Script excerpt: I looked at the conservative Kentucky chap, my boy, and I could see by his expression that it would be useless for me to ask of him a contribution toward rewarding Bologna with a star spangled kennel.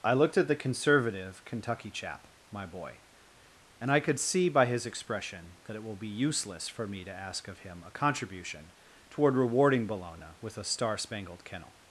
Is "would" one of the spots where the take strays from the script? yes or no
yes